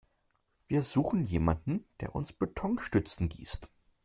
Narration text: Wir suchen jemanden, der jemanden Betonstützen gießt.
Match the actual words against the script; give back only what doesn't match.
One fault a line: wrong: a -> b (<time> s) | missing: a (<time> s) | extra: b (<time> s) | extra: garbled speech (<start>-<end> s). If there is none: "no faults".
wrong: jemanden -> uns (2.1 s)